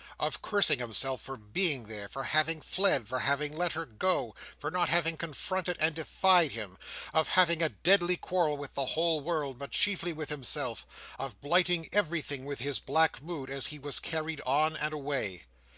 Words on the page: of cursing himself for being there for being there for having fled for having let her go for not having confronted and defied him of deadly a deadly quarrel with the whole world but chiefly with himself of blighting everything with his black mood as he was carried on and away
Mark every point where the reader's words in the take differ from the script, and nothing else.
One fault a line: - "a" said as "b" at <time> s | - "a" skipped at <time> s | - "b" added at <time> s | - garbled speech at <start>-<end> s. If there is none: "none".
- "being there for" skipped at 2.2 s
- "deadly" said as "having" at 7.3 s